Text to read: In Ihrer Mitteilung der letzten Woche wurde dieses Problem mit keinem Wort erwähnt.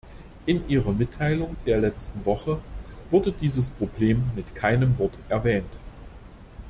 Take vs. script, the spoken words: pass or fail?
pass